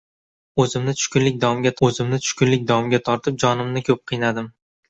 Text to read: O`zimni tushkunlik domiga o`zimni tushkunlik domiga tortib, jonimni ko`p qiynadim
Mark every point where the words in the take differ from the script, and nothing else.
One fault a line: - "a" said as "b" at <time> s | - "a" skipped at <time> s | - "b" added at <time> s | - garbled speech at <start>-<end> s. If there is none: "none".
none